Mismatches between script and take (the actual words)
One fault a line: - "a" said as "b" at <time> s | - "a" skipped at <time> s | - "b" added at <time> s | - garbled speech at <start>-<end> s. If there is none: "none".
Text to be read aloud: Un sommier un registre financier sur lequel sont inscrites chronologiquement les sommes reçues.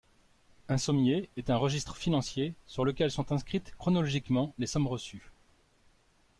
- "est" added at 1.4 s